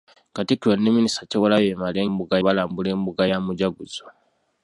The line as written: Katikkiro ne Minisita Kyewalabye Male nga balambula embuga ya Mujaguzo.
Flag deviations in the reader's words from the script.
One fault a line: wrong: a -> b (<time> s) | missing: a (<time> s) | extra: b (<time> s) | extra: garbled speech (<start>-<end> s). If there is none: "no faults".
wrong: nga -> embuga (2.1 s)